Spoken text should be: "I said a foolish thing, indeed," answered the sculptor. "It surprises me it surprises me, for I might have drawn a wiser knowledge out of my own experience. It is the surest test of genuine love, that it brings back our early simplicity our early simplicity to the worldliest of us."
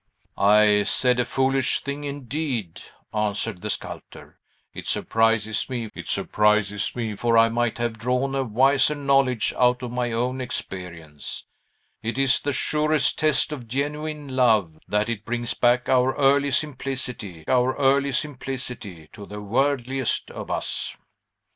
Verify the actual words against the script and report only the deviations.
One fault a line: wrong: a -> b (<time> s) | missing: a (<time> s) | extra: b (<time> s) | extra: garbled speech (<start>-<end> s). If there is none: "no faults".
no faults